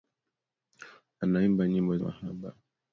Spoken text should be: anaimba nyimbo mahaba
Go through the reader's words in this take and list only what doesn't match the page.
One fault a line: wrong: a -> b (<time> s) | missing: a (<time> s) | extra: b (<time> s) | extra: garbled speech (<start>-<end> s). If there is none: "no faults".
no faults